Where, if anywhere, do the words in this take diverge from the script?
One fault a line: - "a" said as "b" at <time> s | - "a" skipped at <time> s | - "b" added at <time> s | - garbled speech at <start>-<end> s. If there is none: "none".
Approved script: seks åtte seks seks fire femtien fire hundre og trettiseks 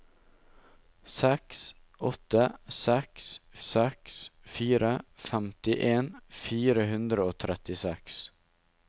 none